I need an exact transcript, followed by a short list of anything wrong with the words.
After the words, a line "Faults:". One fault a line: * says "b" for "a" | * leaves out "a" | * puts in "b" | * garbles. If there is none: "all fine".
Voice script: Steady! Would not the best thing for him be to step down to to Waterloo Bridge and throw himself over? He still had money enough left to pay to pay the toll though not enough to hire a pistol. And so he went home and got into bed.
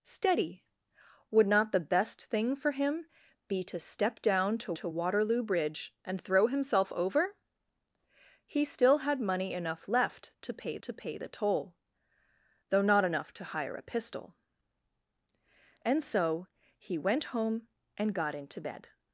Steady! Would not the best thing for him be to step down to to Waterloo Bridge and throw himself over? He still had money enough left to pay to pay the toll though not enough to hire a pistol. And so he went home and got into bed.
Faults:
all fine